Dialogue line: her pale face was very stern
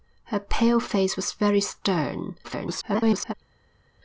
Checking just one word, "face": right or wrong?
right